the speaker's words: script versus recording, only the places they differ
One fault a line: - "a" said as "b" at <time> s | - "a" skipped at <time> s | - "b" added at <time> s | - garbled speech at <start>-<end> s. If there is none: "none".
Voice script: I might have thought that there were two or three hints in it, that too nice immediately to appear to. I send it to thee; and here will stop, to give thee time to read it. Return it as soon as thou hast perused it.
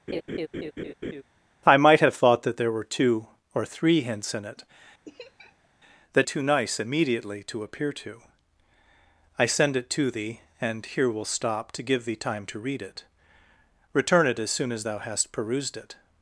none